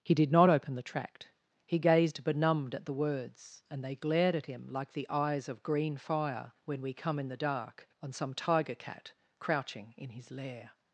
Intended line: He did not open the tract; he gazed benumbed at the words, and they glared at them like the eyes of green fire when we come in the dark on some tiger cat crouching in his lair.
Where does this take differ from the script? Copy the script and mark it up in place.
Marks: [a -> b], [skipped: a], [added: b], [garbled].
He did not open the tract; he gazed benumbed at the words, and they glared at [them -> him] like the eyes of green fire when we come in the dark on some tiger cat crouching in his lair.